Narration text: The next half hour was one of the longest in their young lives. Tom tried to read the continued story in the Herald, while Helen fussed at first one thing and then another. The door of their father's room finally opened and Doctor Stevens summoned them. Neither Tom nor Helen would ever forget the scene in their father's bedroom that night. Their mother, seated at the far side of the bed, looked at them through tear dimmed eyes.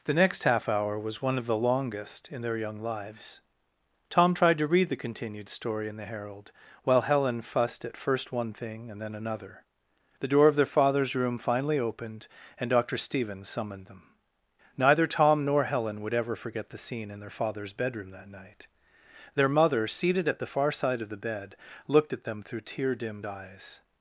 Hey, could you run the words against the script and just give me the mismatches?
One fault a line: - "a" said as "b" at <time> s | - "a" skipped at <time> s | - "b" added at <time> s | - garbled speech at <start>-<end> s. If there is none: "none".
none